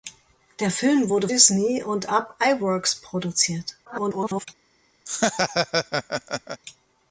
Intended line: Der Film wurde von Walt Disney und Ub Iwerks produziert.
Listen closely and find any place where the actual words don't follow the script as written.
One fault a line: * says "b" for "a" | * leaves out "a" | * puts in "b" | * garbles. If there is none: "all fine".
* leaves out "von Walt"
* garbles